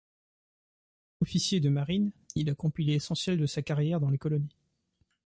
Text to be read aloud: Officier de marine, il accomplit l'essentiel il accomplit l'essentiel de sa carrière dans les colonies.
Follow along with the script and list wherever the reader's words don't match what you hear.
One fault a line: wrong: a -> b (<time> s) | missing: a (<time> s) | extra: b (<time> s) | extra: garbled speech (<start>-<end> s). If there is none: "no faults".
missing: il accomplit l'essentiel (3.4 s)